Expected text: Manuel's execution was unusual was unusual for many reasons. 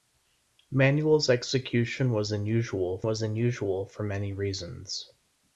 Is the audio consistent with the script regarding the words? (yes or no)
yes